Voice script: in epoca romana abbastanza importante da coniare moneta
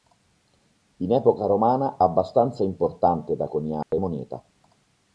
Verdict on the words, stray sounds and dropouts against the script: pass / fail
fail